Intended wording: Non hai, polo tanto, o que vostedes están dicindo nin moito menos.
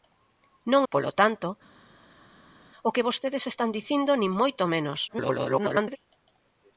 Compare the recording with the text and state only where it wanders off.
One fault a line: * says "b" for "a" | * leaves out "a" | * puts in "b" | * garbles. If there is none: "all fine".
* leaves out "hai"
* garbles